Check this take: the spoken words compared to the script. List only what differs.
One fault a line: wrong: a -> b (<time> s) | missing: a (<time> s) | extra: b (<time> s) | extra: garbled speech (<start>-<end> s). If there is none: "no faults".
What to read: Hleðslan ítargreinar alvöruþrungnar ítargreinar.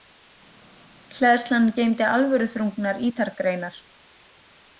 wrong: ítargreinar -> geymdi (1.8 s)